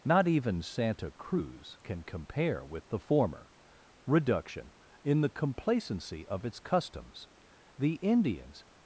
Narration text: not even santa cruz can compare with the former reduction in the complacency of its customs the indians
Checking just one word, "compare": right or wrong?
right